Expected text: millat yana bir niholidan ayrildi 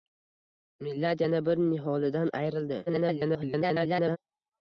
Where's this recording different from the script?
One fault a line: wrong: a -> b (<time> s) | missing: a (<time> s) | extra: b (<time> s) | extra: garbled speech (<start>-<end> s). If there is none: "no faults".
extra: garbled speech (2.9-4.2 s)